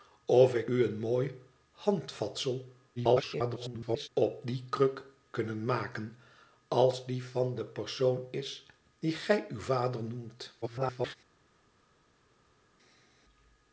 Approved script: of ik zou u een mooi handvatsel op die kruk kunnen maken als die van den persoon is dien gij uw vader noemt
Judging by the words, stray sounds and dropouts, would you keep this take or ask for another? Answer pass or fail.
fail